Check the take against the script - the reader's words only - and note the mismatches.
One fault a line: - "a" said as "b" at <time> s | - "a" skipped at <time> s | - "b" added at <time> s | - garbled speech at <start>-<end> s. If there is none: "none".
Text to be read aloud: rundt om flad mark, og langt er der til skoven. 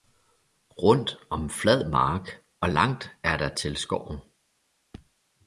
none